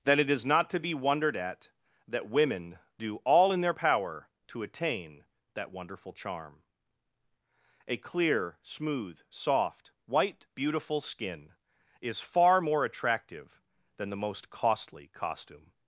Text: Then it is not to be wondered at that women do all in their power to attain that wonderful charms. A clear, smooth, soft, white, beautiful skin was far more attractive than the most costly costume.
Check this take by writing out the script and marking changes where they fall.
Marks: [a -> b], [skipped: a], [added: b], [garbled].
Then it is not to be wondered at that women do all in their power to attain that wonderful [charms. -> charm] A clear, smooth, soft, white, beautiful skin [was -> is] far more attractive than the most costly costume.